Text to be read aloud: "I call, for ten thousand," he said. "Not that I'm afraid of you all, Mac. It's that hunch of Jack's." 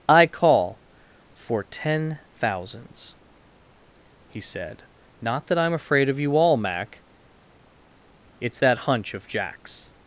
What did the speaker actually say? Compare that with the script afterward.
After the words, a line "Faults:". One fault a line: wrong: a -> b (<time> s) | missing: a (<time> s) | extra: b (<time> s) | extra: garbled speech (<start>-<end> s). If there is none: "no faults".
"I call, for ten thousands," he said. "Not that I'm afraid of you all, Mac. It's that hunch of Jack's."
Faults:
wrong: thousand -> thousands (2.4 s)